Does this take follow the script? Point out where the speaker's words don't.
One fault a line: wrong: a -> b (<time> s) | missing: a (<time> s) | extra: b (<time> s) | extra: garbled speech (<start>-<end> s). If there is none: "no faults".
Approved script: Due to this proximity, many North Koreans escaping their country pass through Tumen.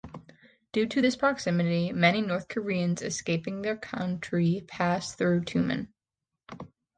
no faults